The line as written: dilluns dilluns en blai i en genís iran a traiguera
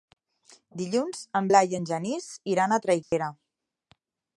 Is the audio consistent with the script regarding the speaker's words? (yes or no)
no